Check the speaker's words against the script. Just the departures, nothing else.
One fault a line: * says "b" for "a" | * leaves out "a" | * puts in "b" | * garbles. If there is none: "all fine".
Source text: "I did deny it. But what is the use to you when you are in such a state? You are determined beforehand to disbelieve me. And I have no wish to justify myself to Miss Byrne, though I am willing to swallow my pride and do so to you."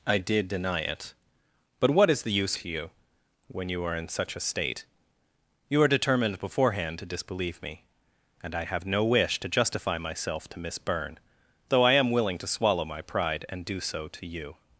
all fine